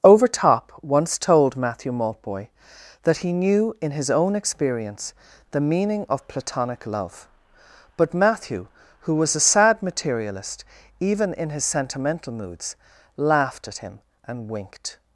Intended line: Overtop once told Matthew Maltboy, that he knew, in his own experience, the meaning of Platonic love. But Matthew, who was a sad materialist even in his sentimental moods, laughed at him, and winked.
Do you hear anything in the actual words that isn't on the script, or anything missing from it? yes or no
no